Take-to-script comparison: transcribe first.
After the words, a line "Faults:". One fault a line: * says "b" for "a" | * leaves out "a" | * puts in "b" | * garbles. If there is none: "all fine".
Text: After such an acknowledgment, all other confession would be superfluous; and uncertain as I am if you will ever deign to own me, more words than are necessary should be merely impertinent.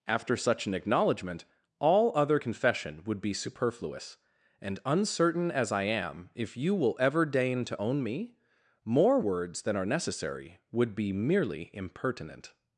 After such an acknowledgment, all other confession would be superfluous; and uncertain as I am if you will ever deign to own me, more words than are necessary would be merely impertinent.
Faults:
* says "would" for "should"